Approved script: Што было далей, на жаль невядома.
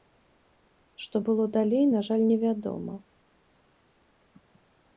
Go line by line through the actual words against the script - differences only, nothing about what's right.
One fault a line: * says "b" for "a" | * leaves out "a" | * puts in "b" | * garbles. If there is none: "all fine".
all fine